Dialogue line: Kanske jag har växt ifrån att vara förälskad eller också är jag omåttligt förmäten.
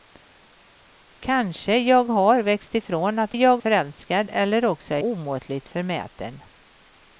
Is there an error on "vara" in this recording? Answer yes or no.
yes